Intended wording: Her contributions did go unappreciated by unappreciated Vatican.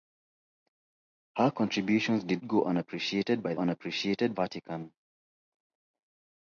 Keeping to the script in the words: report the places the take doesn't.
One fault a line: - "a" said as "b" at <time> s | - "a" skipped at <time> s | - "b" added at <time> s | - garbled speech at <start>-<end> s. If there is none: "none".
none